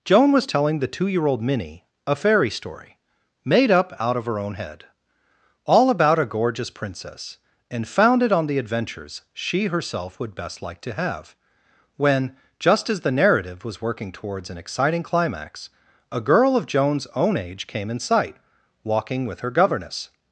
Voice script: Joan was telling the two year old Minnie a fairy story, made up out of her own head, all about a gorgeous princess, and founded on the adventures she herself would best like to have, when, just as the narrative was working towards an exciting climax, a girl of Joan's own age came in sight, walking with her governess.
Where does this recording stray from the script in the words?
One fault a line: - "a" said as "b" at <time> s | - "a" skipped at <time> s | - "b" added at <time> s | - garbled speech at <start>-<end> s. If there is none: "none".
none